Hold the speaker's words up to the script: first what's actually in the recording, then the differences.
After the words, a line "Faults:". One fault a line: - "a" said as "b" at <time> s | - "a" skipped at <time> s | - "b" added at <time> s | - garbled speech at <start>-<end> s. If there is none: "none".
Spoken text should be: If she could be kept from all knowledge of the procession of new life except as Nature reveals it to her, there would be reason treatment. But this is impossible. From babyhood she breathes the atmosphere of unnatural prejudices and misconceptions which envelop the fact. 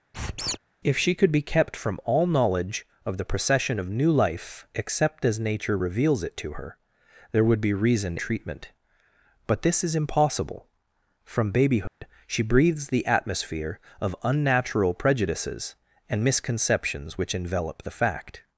If she could be kept from all knowledge of the procession of new life except as Nature reveals it to her, there would be reason treatment. But this is impossible. From babyhood she breathes the atmosphere of unnatural prejudices and misconceptions which envelop the fact.
Faults:
none